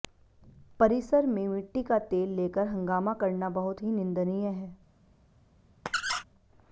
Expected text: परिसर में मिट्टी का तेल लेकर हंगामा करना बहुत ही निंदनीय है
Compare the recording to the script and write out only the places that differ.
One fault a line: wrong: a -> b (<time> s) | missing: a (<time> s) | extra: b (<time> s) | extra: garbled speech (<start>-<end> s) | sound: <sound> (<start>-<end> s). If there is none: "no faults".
sound: squeak (5.9-6.2 s)